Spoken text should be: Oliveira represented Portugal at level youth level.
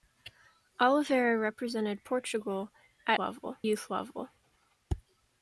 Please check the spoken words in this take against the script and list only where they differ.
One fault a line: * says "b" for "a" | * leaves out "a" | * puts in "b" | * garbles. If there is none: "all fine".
all fine